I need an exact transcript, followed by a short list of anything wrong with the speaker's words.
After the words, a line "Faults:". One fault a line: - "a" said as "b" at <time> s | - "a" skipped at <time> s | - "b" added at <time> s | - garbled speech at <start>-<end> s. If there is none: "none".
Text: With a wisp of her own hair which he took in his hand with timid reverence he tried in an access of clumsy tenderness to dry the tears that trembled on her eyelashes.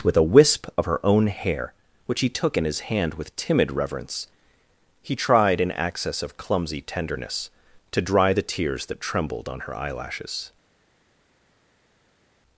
With a wisp of her own hair which he took in his hand with timid reverence he tried in access of clumsy tenderness to dry the tears that trembled on her eyelashes.
Faults:
- "an" skipped at 5.7 s